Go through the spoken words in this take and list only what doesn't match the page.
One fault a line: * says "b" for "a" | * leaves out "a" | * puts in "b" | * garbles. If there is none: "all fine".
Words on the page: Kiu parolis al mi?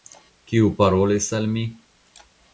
all fine